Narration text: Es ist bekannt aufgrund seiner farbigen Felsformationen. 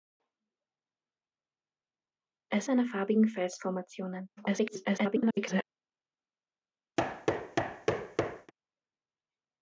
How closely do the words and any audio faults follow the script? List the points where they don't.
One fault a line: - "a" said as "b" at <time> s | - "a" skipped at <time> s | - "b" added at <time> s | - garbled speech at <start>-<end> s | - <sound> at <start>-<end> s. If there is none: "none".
- "ist bekannt aufgrund" skipped at 2.7 s
- garbled speech at 4.4-5.6 s
- thud at 7.0-8.5 s